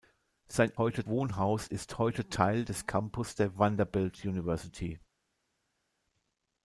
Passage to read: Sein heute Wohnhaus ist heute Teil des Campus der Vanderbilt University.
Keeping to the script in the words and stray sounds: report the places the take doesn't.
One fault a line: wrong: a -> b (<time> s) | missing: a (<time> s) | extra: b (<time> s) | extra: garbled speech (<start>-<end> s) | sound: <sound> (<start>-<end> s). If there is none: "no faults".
no faults